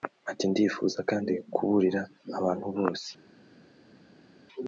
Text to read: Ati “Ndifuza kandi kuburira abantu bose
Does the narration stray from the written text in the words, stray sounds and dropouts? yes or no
no